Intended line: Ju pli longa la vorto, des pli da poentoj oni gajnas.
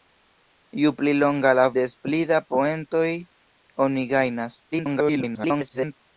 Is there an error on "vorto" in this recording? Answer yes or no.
yes